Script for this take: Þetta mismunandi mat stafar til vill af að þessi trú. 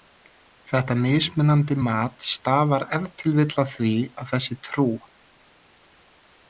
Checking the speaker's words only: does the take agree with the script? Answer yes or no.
no